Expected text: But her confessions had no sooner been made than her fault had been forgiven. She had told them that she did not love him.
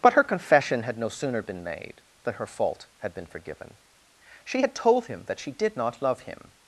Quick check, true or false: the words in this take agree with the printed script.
false